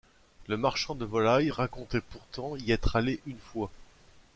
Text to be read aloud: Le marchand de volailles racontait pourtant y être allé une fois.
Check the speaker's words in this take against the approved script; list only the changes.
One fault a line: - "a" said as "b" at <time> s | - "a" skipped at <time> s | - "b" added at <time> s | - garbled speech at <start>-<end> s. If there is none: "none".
none